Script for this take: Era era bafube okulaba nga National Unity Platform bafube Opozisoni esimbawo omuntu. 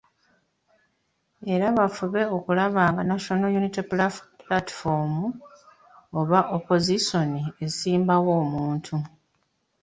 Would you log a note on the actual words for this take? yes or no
yes